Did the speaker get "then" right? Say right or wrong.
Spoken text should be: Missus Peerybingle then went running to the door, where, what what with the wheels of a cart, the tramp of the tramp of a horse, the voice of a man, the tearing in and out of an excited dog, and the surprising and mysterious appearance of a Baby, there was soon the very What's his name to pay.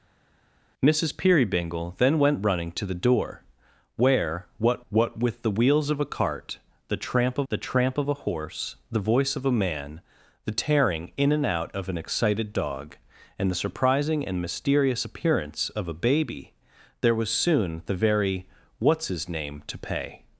right